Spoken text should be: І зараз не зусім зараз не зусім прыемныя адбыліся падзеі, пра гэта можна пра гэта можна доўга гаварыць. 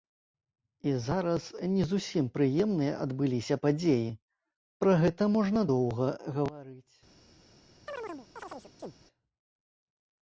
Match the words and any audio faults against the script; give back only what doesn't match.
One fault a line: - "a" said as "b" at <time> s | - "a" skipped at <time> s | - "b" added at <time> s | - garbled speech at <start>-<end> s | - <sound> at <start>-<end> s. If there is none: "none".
- "зараз не зусім" skipped at 2.3 s
- "пра гэта можна" skipped at 5.6 s
- chirp at 7.9-9.0 s